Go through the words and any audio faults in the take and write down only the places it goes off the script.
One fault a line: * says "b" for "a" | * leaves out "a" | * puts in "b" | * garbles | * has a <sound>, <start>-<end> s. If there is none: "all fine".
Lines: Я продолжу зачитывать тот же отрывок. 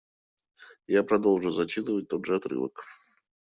all fine